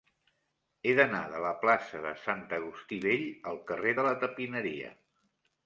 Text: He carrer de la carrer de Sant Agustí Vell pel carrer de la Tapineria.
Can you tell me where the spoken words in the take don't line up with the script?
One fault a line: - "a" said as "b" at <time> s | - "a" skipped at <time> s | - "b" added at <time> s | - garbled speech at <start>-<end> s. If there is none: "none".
- "carrer" said as "d'anar" at 1.0 s
- "carrer" said as "plaça" at 1.6 s
- "pel" said as "al" at 3.5 s